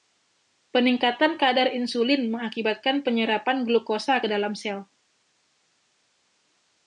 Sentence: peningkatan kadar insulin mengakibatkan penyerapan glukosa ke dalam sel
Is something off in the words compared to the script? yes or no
no